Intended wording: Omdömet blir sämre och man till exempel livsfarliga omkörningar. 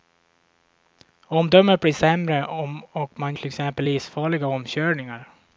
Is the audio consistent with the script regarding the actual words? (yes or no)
yes